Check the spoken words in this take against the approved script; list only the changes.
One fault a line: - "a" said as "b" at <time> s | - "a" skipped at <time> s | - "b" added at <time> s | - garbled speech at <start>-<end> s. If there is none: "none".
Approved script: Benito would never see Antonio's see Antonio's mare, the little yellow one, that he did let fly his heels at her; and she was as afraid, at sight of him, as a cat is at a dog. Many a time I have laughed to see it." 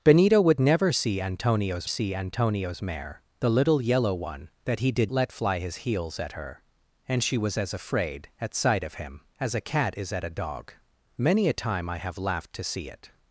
none